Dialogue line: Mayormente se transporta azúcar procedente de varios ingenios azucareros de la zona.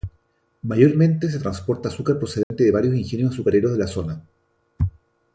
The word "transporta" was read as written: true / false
true